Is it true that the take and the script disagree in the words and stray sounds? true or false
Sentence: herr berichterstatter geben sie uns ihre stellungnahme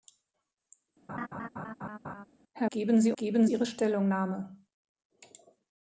true